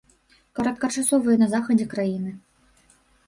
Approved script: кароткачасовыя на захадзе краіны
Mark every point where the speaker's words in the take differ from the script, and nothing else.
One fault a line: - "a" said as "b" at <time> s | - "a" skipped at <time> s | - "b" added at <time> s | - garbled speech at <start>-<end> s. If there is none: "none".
none